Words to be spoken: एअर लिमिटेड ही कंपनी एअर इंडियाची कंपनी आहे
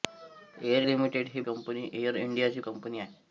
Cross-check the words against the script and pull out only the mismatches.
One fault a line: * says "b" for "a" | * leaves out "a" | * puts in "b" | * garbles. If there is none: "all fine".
all fine